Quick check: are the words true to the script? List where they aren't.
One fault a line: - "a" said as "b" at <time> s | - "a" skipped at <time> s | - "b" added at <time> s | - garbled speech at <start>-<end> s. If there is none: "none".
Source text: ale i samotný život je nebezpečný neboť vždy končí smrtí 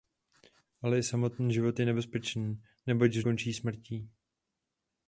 - "vždy" skipped at 3.2 s